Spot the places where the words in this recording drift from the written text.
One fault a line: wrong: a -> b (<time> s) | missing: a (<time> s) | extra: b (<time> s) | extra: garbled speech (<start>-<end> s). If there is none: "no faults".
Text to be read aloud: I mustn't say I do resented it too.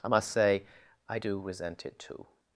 wrong: mustn't -> must (0.1 s)
wrong: resented -> resent (1.4 s)